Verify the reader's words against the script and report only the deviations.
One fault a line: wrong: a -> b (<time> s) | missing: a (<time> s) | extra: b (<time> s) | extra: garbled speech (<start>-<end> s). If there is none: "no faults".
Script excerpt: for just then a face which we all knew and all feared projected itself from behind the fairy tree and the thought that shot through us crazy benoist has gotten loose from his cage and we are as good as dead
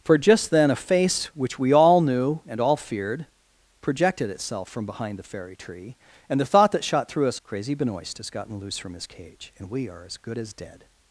no faults